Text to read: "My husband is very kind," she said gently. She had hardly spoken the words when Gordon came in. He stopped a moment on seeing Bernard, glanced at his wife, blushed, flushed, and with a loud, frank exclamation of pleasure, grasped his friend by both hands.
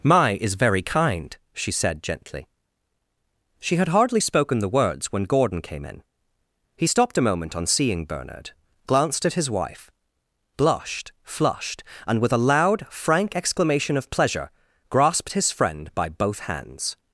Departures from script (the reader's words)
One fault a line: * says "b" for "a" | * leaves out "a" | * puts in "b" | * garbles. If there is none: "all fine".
* leaves out "husband"